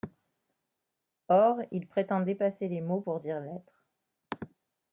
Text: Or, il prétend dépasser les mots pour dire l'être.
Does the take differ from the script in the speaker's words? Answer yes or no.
no